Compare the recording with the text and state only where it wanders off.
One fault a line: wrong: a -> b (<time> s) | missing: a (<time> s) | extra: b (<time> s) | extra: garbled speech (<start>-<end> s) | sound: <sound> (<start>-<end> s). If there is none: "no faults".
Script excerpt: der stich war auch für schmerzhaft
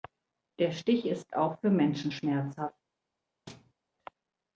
wrong: war -> ist (1.1 s)
extra: menschen (1.7 s)
sound: thud (3.5-3.7 s)